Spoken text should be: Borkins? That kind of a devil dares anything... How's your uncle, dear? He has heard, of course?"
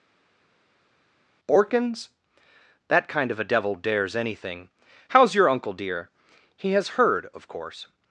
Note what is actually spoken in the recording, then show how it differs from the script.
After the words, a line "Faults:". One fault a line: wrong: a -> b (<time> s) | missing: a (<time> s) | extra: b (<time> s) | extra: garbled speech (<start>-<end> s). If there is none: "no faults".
Borkins? That kind of a devil dares anything... How's your uncle, dear? He has heard, of course?"
Faults:
no faults